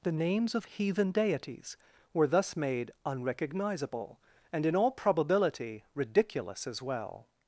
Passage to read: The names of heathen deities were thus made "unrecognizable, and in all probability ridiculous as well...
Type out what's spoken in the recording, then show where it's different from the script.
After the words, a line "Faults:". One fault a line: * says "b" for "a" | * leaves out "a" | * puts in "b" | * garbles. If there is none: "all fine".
The names of heathen deities were thus made "unrecognizable, and in all probability ridiculous as well...
Faults:
all fine